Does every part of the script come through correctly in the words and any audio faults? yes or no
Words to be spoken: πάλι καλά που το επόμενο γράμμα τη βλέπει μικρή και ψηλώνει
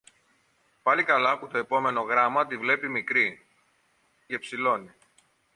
yes